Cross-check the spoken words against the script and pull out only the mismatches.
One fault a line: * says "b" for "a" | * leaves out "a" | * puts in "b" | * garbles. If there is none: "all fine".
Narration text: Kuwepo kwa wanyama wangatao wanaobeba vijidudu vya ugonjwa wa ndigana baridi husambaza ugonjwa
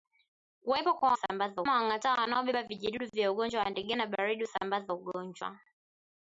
* says "husambaza" for "wanyama"